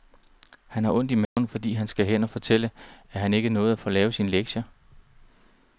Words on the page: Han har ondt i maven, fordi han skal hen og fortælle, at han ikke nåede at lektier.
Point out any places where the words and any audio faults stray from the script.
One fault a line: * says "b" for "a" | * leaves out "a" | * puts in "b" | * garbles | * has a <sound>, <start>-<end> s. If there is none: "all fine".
* has a dropout, 1.3-1.4 s
* puts in "få lavet sine"